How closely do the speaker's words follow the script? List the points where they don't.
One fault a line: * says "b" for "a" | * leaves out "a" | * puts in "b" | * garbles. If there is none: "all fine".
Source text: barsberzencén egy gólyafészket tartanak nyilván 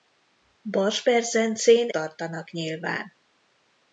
* leaves out "egy gólyafészket"